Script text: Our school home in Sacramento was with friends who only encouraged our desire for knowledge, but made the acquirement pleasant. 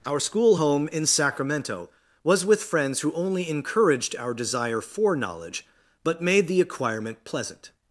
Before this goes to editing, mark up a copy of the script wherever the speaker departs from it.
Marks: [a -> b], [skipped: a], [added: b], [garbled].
Our school home in Sacramento was with friends who only encouraged our desire for knowledge, but made the acquirement pleasant.